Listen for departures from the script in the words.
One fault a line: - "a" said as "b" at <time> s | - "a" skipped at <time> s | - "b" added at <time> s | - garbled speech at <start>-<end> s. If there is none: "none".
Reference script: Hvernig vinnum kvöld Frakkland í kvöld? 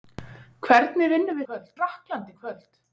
none